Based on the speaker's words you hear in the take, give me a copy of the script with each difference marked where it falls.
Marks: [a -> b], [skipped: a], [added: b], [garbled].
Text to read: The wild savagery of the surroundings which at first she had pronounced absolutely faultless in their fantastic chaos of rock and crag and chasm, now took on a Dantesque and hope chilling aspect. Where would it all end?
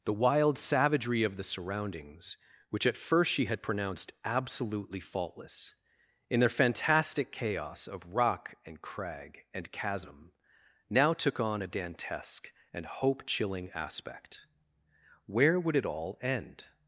The wild savagery of the surroundings which at first she had pronounced absolutely faultless in their fantastic chaos of rock and crag and chasm, now took on a Dantesque and hope chilling aspect. Where would it all end?